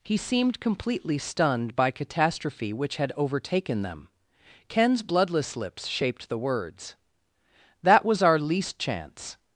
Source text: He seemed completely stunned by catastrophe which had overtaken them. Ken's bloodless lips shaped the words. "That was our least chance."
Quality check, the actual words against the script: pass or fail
pass